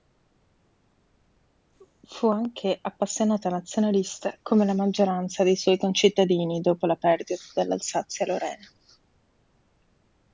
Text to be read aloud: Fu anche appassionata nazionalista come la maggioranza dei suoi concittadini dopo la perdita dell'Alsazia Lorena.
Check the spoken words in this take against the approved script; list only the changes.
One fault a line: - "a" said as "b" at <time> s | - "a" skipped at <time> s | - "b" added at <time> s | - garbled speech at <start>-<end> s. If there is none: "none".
none